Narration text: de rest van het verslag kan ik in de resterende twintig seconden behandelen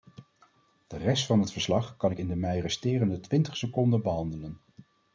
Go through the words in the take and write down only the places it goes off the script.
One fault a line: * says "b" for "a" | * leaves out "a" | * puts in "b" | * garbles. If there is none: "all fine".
* puts in "mij"